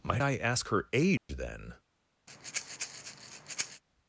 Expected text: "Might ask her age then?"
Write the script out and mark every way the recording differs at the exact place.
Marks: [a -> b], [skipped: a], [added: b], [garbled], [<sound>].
"Might [added: I] ask her age [dropout] then?" [breath]